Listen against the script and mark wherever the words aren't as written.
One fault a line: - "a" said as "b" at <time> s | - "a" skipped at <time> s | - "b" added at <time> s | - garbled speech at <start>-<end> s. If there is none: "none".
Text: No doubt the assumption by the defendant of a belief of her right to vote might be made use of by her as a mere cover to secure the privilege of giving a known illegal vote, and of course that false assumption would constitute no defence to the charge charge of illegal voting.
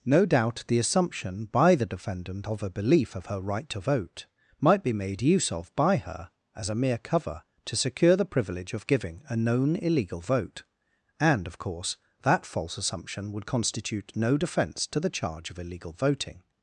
- "charge" skipped at 15.5 s